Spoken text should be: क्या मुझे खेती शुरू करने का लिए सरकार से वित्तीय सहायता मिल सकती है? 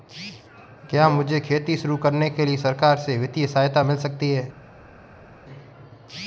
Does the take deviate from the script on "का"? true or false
true